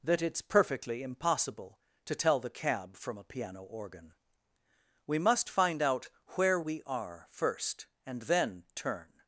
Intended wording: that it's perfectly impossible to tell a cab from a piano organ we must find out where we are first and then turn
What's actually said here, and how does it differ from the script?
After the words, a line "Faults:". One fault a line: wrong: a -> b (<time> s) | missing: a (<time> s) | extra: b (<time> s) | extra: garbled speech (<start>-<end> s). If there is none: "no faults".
that it's perfectly impossible to tell the cab from a piano organ we must find out where we are first and then turn
Faults:
wrong: a -> the (2.4 s)